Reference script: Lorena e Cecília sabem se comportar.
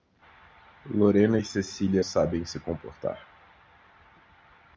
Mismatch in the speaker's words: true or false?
false